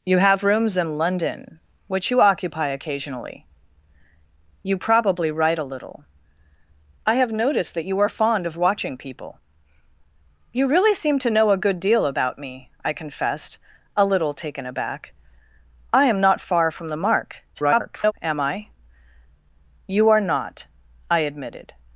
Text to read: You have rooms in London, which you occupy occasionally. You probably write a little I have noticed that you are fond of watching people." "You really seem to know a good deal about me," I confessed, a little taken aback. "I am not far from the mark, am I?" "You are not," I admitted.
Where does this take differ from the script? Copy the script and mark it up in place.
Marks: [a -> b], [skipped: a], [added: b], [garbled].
You have rooms in London, which you occupy occasionally. You probably write a little I have noticed that you are fond of watching people." "You really seem to know a good deal about me," I confessed, a little taken aback. "I am not far from the mark, [garbled] am I?" "You are not," I admitted.